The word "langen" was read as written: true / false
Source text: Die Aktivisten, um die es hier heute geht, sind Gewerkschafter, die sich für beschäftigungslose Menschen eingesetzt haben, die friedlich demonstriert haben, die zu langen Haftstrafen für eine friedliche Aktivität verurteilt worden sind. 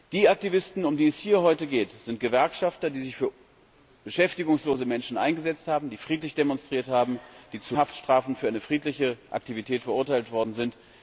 false